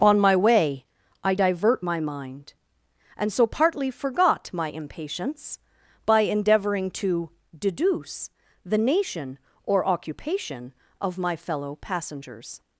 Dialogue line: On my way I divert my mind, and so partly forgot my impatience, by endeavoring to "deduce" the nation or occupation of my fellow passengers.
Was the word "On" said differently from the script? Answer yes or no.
no